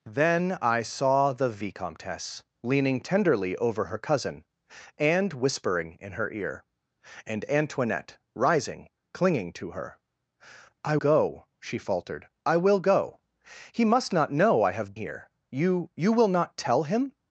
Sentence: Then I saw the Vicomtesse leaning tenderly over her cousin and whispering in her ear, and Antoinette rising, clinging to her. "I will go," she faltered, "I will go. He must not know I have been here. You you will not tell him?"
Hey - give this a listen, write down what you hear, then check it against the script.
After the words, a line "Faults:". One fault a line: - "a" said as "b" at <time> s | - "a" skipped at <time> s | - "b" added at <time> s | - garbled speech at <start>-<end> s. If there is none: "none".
Then I saw the Vicomtesse leaning tenderly over her cousin and whispering in her ear, and Antoinette rising, clinging to her. "I go," she faltered, "I will go. He must not know I have here. You you will not tell him?"
Faults:
- "will" skipped at 11.0 s
- "been" skipped at 14.9 s